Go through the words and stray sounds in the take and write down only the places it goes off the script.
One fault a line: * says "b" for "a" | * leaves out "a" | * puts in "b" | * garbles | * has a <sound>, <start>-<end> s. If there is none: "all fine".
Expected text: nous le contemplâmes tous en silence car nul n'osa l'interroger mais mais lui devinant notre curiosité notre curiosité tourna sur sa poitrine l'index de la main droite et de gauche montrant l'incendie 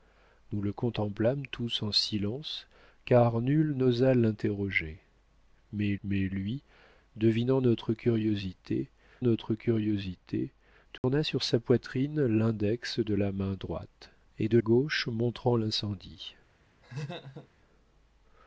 * has a dropout, 11.0-11.0 s
* has a laugh, 16.8-17.5 s